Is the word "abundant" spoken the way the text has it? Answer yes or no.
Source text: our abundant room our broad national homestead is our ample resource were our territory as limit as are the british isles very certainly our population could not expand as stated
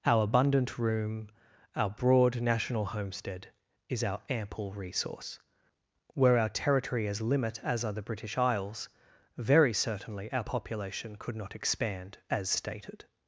yes